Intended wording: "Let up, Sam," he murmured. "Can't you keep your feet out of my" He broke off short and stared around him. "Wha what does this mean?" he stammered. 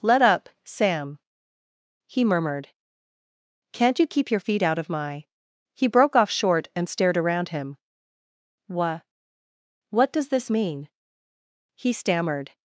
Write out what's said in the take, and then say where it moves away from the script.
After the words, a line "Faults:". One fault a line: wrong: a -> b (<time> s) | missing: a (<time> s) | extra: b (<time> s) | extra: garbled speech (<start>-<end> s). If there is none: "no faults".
"Let up, Sam," he murmured. "Can't you keep your feet out of my" He broke off short and stared around him. "Wha what does this mean?" he stammered.
Faults:
no faults